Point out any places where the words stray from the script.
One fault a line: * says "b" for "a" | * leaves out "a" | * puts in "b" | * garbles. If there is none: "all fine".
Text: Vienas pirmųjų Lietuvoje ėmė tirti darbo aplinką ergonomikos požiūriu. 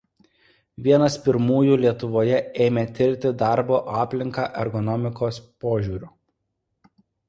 all fine